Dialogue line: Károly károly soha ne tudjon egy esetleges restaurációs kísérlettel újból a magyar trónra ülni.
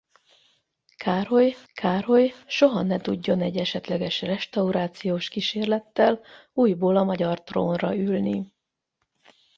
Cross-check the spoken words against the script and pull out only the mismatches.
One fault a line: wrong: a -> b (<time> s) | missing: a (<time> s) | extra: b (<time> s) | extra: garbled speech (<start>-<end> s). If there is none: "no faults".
no faults